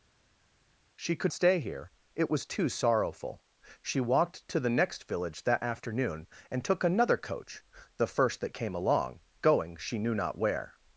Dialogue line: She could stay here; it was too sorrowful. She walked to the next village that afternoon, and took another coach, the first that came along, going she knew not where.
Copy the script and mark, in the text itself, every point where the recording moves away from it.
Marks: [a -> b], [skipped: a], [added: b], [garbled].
She could stay here; it was too sorrowful. She walked to the next village that afternoon, and took another coach, the first that came along, going she knew not where.